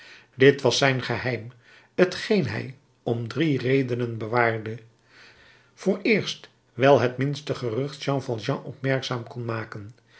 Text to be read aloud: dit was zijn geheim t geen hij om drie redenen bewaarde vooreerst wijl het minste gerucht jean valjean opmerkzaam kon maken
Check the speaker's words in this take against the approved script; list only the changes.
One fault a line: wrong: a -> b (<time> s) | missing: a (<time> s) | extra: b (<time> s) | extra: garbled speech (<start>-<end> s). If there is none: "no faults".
no faults